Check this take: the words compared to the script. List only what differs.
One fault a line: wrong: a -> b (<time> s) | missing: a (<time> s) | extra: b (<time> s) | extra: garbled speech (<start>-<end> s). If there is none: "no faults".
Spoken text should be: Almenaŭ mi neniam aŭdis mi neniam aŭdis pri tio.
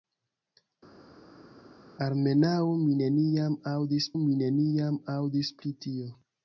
no faults